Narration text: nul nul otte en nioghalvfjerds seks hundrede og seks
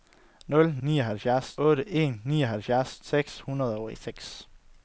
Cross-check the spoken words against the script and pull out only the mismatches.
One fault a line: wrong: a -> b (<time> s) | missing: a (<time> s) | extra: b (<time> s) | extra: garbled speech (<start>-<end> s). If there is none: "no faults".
wrong: nul -> nioghalvfjerds (0.9 s)